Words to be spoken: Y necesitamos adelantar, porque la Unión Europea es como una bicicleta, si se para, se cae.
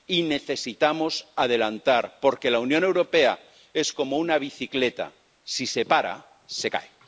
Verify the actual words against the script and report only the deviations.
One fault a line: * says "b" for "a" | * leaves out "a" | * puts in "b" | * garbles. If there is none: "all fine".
all fine